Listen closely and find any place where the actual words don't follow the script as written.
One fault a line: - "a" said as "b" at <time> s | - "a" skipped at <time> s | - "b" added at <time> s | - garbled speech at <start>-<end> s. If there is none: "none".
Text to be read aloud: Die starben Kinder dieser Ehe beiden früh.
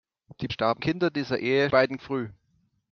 none